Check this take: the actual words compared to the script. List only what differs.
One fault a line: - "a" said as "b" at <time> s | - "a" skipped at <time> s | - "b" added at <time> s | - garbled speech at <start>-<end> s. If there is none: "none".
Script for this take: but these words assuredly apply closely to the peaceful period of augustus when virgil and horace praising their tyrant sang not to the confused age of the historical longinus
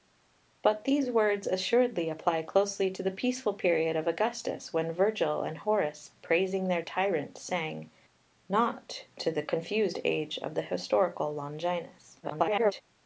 - garbled speech at 12.2-12.8 s